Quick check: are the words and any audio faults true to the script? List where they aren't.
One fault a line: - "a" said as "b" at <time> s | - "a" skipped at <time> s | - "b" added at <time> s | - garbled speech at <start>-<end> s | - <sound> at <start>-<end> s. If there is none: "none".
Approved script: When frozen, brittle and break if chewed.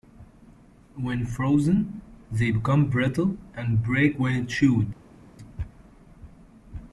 - "they become" added at 2.3 s
- "if" said as "when" at 4.2 s